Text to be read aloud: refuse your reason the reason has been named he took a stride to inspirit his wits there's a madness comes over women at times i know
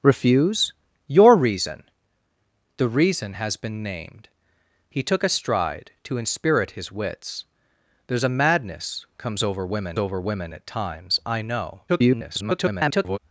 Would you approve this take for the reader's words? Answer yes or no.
no